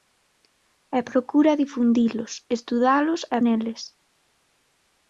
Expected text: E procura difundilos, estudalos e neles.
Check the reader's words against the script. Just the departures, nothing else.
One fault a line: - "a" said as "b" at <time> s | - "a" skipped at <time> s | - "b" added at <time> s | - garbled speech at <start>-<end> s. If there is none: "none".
none